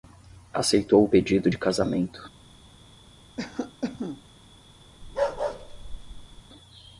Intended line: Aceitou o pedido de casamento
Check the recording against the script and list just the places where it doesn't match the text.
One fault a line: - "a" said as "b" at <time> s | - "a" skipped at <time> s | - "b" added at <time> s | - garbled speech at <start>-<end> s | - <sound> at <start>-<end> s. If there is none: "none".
- cough at 3.4-4.2 s
- bark at 5.0-6.4 s